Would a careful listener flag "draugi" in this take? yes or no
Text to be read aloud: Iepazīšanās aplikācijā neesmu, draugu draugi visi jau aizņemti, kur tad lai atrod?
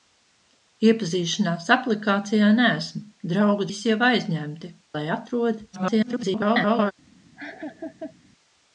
yes